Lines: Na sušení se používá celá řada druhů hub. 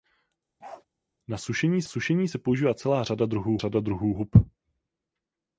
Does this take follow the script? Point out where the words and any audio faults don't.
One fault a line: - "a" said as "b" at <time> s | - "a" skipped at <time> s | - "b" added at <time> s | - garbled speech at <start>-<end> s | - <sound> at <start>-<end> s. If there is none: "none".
- bark at 0.6-0.9 s
- "sušení" added at 1.8 s
- "řada druhů" added at 3.6 s